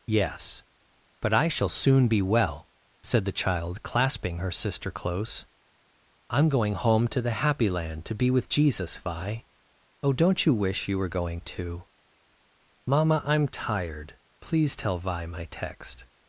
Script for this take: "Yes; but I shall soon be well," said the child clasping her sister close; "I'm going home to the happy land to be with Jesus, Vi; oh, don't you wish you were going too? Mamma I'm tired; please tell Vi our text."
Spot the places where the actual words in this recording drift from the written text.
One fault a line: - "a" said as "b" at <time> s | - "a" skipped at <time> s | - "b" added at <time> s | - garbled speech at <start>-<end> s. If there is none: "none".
- "our" said as "my" at 15.3 s